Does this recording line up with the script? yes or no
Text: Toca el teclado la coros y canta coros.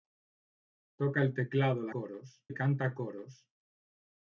yes